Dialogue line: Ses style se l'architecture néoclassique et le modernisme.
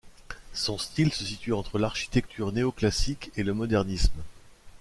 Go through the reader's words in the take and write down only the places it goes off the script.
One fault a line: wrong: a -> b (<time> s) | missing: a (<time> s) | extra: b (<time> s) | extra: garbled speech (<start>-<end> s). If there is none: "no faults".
wrong: Ses -> Son (0.5 s)
extra: situe entre (1.2 s)